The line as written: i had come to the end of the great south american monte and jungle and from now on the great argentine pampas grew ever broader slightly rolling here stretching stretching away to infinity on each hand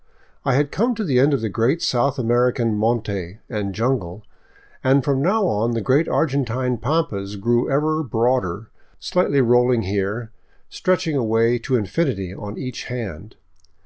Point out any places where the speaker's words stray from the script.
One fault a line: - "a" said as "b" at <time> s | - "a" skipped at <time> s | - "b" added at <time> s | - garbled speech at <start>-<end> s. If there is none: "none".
- "stretching" skipped at 11.2 s